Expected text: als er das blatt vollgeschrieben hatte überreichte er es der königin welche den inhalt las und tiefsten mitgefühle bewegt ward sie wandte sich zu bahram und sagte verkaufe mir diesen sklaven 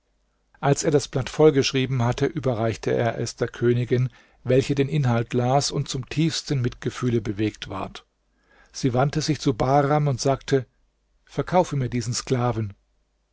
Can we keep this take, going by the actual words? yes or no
no